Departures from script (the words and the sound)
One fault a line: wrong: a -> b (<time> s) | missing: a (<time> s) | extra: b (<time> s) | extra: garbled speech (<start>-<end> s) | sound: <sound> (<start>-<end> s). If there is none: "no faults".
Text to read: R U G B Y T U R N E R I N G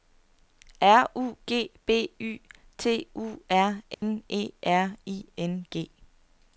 sound: dropout (3.9-4.0 s)